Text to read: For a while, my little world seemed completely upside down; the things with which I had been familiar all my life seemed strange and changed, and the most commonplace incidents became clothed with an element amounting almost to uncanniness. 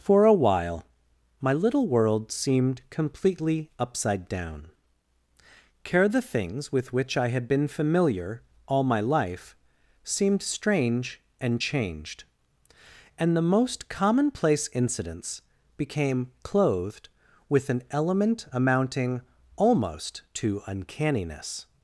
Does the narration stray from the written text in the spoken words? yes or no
yes